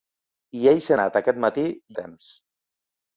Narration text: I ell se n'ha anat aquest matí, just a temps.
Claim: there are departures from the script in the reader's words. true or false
true